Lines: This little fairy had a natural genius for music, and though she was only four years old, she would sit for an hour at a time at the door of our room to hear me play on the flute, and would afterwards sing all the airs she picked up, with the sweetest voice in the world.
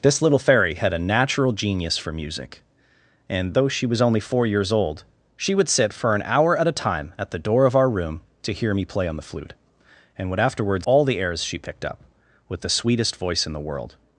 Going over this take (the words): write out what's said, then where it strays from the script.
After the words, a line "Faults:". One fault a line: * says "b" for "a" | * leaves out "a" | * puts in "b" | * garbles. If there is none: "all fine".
This little fairy had a natural genius for music, and though she was only four years old, she would sit for an hour at a time at the door of our room to hear me play on the flute, and would afterwards all the airs she picked up, with the sweetest voice in the world.
Faults:
* leaves out "sing"